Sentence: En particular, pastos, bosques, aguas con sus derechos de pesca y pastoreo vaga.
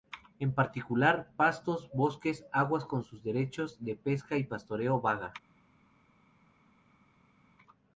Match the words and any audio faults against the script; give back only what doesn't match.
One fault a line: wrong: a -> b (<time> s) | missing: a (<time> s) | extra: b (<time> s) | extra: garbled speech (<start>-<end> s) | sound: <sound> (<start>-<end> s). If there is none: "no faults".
no faults